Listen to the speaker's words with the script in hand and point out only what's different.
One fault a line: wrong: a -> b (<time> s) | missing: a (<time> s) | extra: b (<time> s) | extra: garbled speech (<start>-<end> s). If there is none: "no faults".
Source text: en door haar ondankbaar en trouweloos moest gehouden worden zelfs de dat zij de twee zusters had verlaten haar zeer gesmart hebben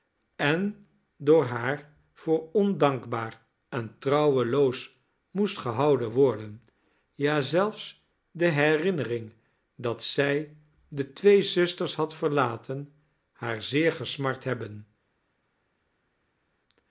extra: voor (2.1 s)
extra: ja (7.1 s)
extra: herinnering (8.5 s)